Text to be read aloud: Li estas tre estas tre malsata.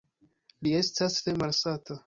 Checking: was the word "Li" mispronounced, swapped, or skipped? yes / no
no